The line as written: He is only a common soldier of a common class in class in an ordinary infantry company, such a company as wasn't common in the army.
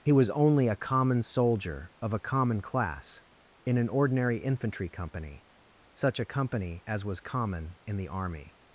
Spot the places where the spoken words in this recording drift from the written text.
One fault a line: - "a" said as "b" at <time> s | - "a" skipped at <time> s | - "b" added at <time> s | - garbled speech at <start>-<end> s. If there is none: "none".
- "is" said as "was" at 0.1 s
- "class in" skipped at 3.8 s
- "wasn't" said as "was" at 7.1 s